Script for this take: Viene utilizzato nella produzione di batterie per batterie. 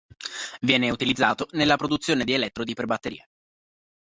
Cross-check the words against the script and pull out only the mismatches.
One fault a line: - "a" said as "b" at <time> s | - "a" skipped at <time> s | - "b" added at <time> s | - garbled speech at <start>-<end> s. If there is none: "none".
- "batterie" said as "elettrodi" at 2.3 s